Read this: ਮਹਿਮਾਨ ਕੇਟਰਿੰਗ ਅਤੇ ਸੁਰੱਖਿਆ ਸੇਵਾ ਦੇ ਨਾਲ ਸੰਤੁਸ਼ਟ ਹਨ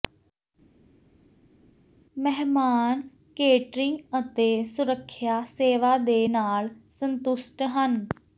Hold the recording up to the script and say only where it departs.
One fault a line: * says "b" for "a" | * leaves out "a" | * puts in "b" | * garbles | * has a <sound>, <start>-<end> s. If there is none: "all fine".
all fine